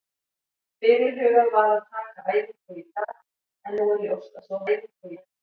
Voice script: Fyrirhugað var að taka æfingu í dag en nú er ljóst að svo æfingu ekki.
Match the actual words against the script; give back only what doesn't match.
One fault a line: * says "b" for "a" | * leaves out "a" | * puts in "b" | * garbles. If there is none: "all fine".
all fine